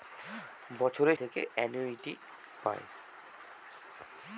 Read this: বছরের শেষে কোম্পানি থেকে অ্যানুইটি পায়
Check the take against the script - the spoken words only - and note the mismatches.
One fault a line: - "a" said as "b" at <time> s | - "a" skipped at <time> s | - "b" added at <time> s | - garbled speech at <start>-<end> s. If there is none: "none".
- "শেষে কোম্পানি" skipped at 1.2 s